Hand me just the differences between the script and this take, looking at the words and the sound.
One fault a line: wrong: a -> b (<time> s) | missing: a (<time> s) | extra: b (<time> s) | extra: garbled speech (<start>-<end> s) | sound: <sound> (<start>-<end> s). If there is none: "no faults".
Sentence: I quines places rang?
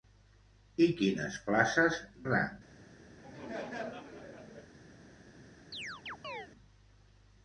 sound: laugh (3.2-4.7 s)
sound: chirp (5.7-6.5 s)